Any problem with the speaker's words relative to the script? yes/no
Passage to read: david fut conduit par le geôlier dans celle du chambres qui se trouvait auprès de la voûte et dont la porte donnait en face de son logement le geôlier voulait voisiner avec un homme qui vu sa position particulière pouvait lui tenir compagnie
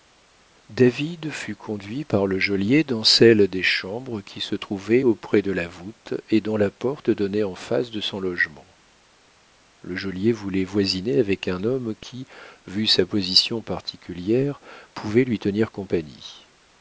yes